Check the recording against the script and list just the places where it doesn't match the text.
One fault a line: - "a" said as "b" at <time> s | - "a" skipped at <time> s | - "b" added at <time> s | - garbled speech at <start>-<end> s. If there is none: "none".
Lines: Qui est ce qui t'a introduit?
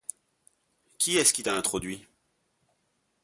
none